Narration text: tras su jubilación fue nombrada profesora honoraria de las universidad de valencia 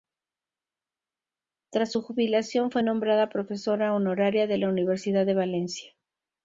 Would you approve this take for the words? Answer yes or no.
no